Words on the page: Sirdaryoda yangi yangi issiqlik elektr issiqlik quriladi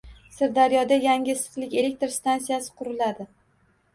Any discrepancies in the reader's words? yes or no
yes